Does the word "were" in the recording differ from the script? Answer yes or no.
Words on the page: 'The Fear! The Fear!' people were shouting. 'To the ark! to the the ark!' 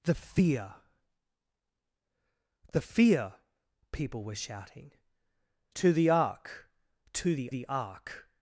no